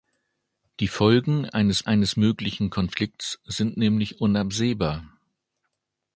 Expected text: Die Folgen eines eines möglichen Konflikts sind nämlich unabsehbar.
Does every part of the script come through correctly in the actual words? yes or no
yes